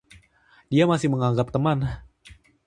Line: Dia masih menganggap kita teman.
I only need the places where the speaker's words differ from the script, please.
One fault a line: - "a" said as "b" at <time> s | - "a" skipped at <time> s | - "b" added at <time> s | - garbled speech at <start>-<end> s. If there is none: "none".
- "kita" skipped at 1.5 s